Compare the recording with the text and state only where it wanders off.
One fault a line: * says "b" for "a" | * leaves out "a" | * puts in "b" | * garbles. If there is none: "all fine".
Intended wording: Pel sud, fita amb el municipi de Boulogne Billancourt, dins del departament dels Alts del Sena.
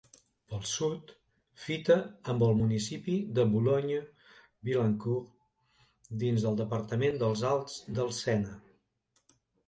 all fine